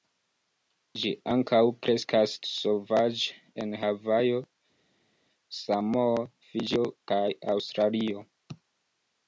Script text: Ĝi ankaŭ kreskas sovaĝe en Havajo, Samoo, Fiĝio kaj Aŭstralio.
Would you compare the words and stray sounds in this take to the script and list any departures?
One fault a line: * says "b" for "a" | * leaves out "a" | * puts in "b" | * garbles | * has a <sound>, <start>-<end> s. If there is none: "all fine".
all fine